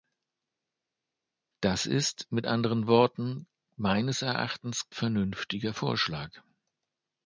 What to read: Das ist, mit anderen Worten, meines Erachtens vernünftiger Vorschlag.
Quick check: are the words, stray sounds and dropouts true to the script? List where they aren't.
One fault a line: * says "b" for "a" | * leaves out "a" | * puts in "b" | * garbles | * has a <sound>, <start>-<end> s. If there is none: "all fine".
all fine